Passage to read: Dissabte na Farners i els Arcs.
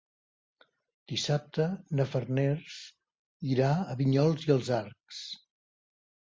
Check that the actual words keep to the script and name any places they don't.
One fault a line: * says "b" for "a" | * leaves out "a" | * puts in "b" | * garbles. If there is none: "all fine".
* puts in "irà a Vinyols"